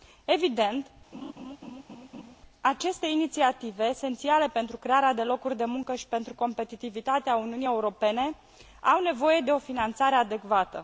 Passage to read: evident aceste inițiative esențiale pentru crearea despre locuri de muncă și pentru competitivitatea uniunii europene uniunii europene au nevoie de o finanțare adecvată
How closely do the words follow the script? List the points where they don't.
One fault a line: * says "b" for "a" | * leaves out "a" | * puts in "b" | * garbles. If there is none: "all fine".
* says "de" for "despre"
* leaves out "uniunii europene"